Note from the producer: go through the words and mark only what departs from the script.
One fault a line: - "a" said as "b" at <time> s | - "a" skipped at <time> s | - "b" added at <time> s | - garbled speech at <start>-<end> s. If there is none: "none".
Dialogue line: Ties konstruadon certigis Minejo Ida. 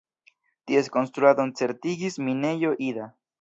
none